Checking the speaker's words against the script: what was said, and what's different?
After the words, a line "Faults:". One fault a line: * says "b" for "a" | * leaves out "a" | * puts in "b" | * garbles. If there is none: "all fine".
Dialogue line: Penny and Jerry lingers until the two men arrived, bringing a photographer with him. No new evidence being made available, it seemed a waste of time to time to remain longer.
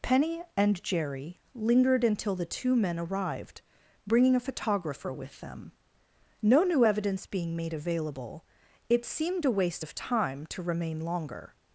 Penny and Jerry lingered until the two men arrived, bringing a photographer with them. No new evidence being made available, it seemed a waste of time to remain longer.
Faults:
* says "lingered" for "lingers"
* says "them" for "him"
* leaves out "time to"